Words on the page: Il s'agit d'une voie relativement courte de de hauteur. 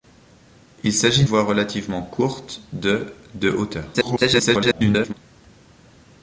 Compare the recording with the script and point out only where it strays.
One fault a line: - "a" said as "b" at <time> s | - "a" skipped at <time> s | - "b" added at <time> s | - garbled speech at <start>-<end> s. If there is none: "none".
- "d'une" skipped at 1.2 s
- garbled speech at 3.9-5.1 s